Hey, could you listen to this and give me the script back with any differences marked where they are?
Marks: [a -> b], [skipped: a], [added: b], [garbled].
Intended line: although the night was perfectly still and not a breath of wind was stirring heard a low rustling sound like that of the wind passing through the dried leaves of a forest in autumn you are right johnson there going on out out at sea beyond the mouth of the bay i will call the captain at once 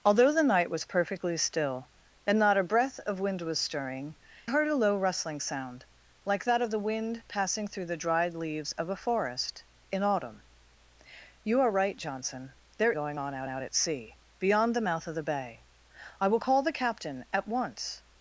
although the night was perfectly still and not a breath of wind was stirring heard a low rustling sound like that of the wind passing through the dried leaves of a forest in autumn you are right johnson there going on out out at sea beyond the mouth of the bay i will call the captain at once